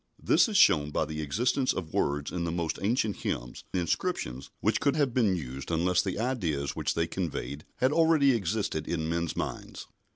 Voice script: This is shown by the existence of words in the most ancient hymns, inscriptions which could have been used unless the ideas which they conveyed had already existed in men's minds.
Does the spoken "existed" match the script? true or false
true